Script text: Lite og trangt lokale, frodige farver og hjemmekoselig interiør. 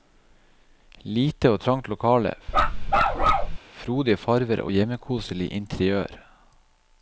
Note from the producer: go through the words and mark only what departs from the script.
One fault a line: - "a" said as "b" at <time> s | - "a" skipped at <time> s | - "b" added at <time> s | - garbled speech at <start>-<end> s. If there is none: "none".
none